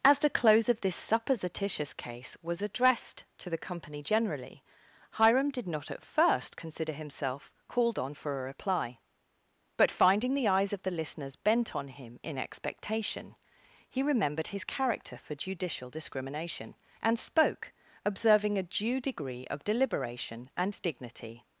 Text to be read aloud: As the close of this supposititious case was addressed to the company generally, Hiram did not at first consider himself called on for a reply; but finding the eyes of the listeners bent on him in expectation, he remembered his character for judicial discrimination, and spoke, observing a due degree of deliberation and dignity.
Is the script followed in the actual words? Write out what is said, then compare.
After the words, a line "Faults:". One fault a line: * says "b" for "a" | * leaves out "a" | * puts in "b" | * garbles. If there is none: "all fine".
As the close of this supposititious case was addressed to the company generally, Hiram did not at first consider himself called on for a reply; but finding the eyes of the listeners bent on him in expectation, he remembered his character for judicial discrimination, and spoke, observing a due degree of deliberation and dignity.
Faults:
all fine